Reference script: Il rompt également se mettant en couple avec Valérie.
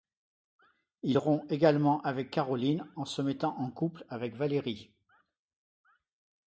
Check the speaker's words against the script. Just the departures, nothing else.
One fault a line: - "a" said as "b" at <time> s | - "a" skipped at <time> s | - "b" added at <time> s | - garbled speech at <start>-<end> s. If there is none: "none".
- "avec Caroline en" added at 2.0 s